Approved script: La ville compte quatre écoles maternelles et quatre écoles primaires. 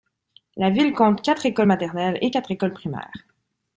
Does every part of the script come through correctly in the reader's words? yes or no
yes